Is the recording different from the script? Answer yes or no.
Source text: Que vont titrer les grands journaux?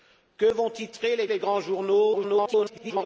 yes